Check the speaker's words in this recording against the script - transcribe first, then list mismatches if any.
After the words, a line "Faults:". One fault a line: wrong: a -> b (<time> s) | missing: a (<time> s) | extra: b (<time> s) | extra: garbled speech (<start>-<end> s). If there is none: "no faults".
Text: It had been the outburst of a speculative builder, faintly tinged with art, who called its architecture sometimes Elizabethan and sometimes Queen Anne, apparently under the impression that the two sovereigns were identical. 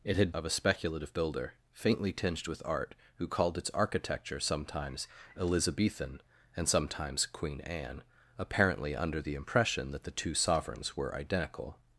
It had of a speculative builder, faintly tinged with art, who called its architecture sometimes Elizabethan and sometimes Queen Anne, apparently under the impression that the two sovereigns were identical.
Faults:
missing: been the outburst (0.3 s)